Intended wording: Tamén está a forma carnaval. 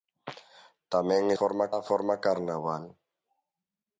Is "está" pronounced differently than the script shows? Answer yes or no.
yes